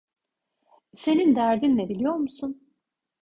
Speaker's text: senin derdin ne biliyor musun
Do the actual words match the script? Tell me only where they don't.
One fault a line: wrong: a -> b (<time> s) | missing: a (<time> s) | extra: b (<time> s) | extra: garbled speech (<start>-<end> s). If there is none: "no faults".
no faults